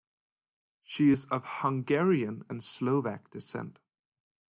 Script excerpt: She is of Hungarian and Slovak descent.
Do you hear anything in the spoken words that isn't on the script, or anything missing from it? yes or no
no